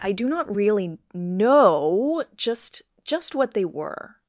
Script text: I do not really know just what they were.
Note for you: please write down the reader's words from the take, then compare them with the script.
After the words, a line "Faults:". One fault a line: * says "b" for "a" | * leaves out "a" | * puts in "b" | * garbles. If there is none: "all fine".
I do not really know just just what they were.
Faults:
* puts in "just"